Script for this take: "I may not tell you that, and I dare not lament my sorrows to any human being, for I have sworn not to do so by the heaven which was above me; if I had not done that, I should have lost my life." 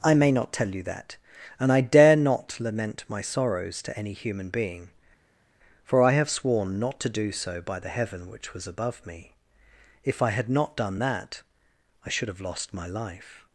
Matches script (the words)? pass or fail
pass